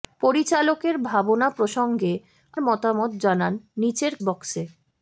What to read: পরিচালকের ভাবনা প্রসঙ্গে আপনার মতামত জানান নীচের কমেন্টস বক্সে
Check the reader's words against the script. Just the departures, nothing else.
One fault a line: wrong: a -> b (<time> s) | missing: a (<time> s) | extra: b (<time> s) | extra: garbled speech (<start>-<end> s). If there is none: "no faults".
missing: আপনার (2.1 s)
missing: কমেন্টস (4.1 s)